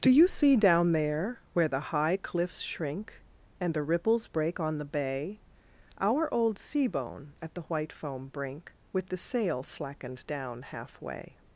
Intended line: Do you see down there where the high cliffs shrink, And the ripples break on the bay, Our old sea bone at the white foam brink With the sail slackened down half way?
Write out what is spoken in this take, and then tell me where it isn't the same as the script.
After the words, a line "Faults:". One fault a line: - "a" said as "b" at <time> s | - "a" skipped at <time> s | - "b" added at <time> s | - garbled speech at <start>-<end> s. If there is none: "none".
Do you see down there where the high cliffs shrink, And the ripples break on the bay, Our old sea bone at the white foam brink With the sail slackened down half way?
Faults:
none